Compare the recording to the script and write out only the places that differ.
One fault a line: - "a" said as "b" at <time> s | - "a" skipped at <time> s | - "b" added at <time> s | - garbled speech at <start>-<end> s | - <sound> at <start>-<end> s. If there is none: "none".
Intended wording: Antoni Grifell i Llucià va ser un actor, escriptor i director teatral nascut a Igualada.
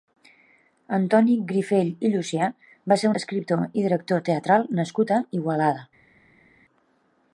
- "un actor" skipped at 3.1 s